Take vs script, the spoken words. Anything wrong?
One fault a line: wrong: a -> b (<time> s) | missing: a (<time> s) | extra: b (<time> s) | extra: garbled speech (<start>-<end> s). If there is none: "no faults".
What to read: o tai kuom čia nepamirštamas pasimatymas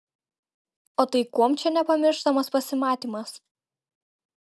no faults